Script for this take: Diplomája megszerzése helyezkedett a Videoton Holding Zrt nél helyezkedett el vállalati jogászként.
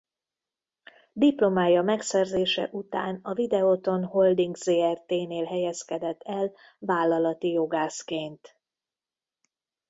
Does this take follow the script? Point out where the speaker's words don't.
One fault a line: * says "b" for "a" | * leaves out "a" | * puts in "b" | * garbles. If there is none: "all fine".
* says "után" for "helyezkedett"